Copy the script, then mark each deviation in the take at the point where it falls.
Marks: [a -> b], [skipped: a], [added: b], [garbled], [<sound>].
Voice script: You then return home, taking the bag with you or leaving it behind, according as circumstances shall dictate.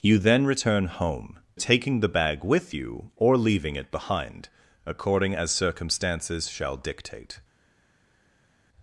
You then return home, taking the bag with you or leaving it behind, according as circumstances shall dictate.